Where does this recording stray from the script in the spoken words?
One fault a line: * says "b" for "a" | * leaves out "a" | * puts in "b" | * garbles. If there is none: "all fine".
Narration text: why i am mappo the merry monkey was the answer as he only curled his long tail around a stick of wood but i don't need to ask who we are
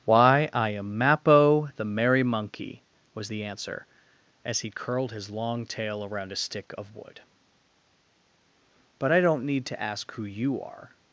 * leaves out "only"
* says "you" for "we"